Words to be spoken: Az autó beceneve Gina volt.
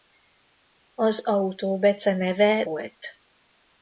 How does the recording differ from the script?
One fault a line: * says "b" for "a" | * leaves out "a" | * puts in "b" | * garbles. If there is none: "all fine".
* leaves out "Gina"